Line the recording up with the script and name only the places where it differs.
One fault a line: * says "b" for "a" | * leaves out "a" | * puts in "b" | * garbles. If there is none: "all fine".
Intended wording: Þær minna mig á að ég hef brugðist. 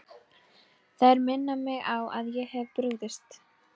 all fine